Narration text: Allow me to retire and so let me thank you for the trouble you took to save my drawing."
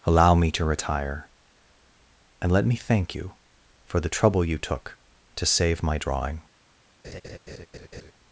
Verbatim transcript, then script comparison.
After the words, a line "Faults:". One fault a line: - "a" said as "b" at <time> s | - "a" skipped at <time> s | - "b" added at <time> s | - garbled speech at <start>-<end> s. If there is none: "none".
Allow me to retire and let me thank you for the trouble you took to save my drawing."
Faults:
- "so" skipped at 2.5 s